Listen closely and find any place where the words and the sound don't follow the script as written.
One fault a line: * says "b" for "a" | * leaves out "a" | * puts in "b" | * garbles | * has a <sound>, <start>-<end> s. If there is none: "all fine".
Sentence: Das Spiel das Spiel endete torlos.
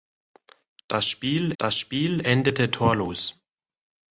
all fine